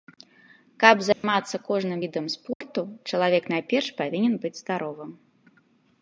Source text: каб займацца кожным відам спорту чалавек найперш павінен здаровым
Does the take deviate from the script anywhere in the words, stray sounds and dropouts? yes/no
yes